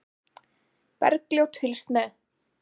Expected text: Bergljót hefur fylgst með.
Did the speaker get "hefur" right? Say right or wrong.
wrong